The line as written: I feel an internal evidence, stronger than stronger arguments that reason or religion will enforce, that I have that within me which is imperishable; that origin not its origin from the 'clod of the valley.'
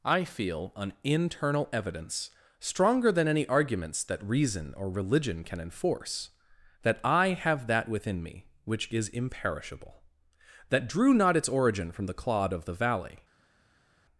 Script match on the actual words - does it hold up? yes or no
no